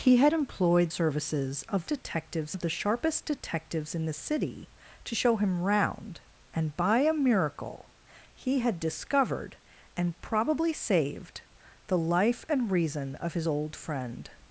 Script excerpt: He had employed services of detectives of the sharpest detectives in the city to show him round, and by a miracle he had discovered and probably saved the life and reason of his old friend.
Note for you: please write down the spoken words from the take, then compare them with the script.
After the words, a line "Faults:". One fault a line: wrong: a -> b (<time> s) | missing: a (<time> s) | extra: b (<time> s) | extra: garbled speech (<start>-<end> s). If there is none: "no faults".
He had employed services of detectives of the sharpest detectives in the city to show him round, and by a miracle he had discovered and probably saved the life and reason of his old friend.
Faults:
no faults